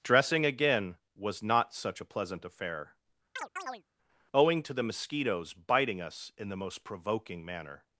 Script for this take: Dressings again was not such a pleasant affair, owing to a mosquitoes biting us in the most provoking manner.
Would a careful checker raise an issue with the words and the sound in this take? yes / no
yes